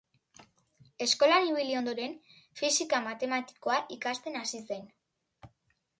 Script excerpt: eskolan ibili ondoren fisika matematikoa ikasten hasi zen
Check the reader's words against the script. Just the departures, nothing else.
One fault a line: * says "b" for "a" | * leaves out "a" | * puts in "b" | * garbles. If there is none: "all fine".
all fine